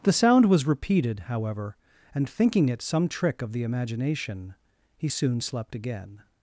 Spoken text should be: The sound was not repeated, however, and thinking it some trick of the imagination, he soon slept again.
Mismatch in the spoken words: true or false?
true